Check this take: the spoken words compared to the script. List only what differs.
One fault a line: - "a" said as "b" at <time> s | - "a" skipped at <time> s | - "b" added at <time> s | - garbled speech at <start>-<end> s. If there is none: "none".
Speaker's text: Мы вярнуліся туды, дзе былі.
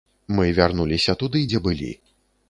none